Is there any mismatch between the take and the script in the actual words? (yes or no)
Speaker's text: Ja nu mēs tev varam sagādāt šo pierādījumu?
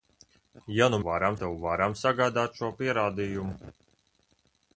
yes